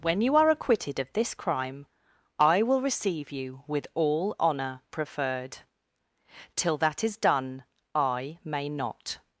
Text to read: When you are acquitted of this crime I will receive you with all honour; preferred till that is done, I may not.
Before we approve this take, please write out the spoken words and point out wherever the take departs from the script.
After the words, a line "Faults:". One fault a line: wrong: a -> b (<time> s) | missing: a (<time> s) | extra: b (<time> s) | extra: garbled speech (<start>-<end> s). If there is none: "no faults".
When you are acquitted of this crime I will receive you with all honour; preferred till that is done, I may not.
Faults:
no faults